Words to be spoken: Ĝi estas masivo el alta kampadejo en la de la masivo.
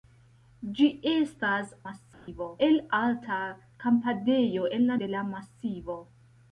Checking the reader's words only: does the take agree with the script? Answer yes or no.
yes